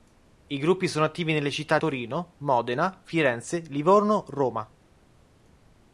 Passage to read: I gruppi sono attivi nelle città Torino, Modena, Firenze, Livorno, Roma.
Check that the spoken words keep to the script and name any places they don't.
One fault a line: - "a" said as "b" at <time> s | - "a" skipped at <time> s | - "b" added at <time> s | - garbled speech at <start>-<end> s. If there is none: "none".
none